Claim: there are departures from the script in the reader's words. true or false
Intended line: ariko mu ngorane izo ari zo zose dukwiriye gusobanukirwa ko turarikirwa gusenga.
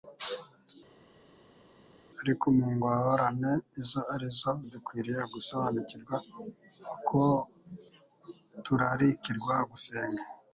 true